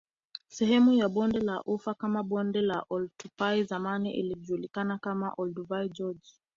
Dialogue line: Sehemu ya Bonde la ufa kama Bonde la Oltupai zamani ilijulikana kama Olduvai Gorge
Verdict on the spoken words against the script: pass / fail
pass